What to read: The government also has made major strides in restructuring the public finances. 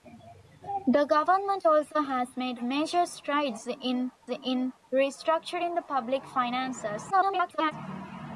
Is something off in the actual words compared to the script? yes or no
yes